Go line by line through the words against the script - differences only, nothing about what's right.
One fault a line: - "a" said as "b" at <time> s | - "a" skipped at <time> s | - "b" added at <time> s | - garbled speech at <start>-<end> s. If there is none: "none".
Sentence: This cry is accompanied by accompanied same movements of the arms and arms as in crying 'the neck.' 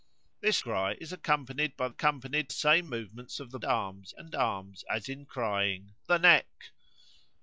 none